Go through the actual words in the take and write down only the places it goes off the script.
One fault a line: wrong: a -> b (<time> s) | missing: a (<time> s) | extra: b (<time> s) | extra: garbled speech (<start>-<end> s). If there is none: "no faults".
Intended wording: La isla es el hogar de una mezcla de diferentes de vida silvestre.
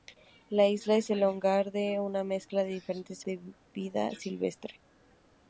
no faults